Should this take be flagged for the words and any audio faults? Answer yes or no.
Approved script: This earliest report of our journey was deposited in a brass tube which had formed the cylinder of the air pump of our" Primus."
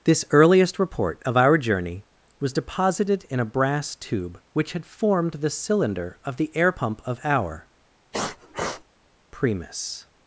yes